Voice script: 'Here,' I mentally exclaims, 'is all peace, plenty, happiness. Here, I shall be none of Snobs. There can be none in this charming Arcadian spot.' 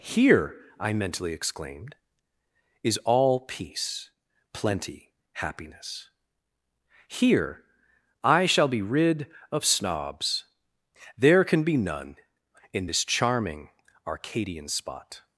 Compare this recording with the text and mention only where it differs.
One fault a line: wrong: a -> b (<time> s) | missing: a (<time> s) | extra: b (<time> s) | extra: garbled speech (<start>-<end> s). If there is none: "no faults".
wrong: exclaims -> exclaimed (1.3 s)
wrong: none -> rid (8.8 s)